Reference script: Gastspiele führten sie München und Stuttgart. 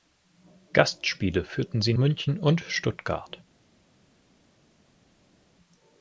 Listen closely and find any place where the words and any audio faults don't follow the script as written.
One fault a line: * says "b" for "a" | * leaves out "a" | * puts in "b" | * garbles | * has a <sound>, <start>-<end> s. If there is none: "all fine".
all fine